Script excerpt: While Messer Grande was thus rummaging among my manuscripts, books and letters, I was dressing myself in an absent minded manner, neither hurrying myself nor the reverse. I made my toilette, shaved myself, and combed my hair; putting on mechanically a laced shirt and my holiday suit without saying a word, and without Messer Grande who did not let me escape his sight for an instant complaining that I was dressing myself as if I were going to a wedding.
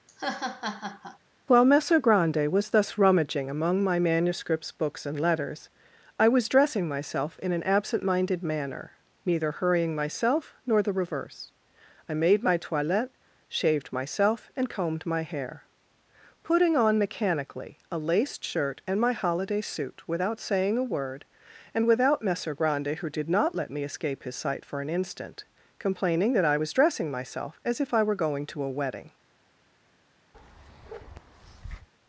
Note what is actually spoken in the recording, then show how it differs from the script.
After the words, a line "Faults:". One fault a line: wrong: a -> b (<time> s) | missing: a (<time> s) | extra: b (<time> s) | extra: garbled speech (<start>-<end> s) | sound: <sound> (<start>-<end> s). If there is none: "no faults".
While Messer Grande was thus rummaging among my manuscripts, books and letters, I was dressing myself in an absent minded manner, neither hurrying myself nor the reverse. I made my toilette, shaved myself, and combed my hair; putting on mechanically a laced shirt and my holiday suit without saying a word, and without Messer Grande who did not let me escape his sight for an instant complaining that I was dressing myself as if I were going to a wedding.
Faults:
sound: laugh (0.1-1.2 s)
sound: bark (30.3-31.9 s)